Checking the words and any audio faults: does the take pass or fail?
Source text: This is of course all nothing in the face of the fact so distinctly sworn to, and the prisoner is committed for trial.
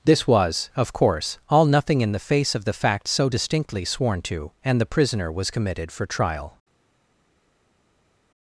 fail